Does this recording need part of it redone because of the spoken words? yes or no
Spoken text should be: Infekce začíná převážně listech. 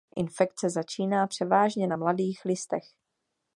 yes